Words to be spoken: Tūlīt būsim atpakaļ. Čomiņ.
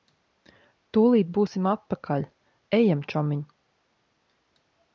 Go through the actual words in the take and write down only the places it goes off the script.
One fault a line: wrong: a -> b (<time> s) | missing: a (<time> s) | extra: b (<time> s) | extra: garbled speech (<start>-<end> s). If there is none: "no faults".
extra: Ejam (2.8 s)